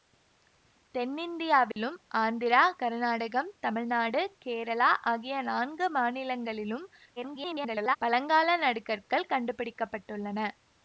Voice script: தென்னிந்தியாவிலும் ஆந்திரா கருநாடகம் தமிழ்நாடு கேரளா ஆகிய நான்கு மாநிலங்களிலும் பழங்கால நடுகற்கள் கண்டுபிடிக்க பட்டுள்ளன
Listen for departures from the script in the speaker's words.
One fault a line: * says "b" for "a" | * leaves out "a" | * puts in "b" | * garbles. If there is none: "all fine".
* garbles